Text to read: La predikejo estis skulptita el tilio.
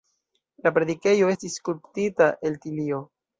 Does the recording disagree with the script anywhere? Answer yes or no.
no